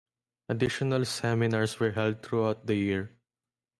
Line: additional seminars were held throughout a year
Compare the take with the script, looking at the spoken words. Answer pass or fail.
fail